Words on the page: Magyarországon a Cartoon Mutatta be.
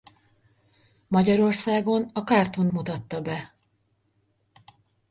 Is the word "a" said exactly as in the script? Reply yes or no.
yes